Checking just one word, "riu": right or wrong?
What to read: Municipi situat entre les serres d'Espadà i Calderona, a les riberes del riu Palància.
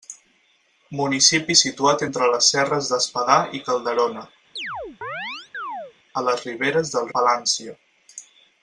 wrong